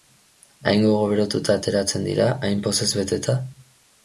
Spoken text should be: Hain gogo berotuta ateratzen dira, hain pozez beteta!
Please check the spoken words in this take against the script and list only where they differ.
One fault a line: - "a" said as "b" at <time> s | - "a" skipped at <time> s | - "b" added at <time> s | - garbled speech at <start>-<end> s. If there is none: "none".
none